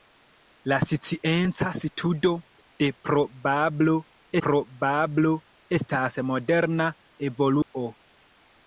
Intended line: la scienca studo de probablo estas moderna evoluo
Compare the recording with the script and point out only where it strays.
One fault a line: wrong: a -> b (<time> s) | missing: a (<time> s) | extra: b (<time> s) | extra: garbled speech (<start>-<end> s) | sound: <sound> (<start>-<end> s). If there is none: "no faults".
extra: probablo (4.5 s)
sound: dropout (7.6-7.7 s)